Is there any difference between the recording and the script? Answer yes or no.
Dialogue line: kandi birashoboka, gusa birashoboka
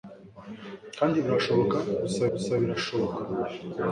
yes